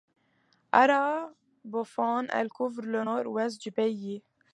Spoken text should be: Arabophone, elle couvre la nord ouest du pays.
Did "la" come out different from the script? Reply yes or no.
yes